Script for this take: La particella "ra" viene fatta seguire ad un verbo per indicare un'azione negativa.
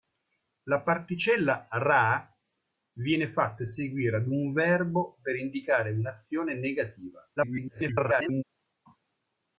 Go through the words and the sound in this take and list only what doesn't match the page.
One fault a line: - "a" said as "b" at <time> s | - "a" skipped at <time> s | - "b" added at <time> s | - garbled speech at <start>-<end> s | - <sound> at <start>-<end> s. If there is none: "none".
- garbled speech at 7.4-8.4 s